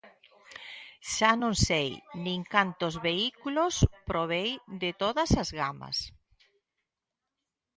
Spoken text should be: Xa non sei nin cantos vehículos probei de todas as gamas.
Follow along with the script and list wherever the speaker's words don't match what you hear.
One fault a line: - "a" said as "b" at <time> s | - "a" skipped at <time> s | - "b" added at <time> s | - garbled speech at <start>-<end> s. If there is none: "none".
none